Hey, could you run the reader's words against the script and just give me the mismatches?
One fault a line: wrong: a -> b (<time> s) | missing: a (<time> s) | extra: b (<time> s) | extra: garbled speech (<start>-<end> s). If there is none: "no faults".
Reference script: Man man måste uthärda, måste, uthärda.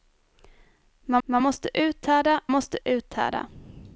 no faults